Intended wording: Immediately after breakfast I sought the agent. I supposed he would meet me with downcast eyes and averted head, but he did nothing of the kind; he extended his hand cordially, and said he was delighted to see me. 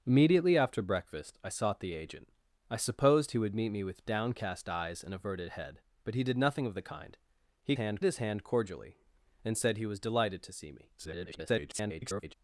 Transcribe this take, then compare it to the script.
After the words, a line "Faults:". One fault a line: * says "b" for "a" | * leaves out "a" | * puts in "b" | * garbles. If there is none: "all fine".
Immediately after breakfast I sought the agent. I supposed he would meet me with downcast eyes and averted head, but he did nothing of the kind; he hand his hand cordially, and said he was delighted to see me. [garbled]
Faults:
* says "hand" for "extended"
* garbles